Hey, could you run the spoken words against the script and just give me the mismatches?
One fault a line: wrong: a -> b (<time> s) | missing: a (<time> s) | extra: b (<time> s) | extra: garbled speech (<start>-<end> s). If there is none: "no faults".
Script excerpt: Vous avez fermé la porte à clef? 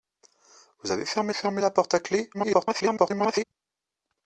extra: fermé (1.3 s)
extra: garbled speech (2.3-3.4 s)